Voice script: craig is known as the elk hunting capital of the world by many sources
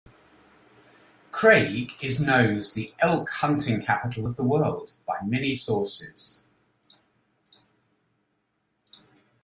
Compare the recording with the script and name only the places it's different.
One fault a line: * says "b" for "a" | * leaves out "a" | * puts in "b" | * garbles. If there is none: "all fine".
all fine